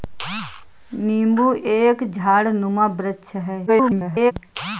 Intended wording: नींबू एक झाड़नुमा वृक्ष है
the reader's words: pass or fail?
fail